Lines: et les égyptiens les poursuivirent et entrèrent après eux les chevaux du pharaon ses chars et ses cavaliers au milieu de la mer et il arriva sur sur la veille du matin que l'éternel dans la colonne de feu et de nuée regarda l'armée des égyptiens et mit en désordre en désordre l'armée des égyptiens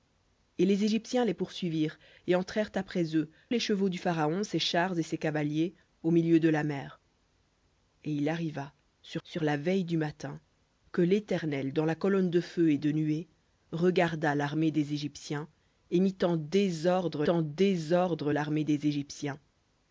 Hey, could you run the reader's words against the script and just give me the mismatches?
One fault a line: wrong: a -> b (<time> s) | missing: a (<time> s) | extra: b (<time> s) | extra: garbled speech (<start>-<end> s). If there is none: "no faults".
no faults